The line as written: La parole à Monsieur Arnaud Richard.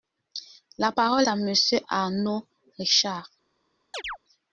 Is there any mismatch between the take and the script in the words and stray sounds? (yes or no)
yes